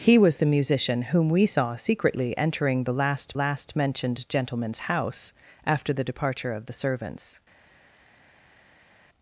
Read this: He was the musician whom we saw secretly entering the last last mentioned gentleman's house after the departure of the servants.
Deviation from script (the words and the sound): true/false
false